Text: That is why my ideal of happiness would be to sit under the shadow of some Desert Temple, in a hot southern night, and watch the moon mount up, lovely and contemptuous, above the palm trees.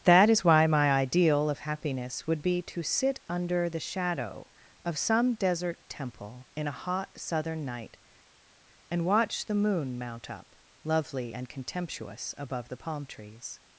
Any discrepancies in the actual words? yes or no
no